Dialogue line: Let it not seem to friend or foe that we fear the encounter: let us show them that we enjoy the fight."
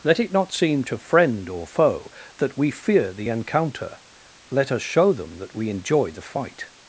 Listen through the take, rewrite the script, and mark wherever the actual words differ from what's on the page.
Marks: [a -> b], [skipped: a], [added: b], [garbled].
Let it not seem to friend or foe that we fear the encounter: let us show them that we enjoy the fight."